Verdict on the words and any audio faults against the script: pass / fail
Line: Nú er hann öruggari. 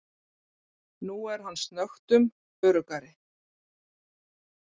fail